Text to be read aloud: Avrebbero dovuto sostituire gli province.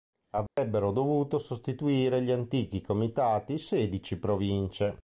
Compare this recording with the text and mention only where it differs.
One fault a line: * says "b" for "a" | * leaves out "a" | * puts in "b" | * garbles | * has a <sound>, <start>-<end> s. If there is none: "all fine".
* has a dropout, 0.5-0.6 s
* puts in "antichi comitati sedici"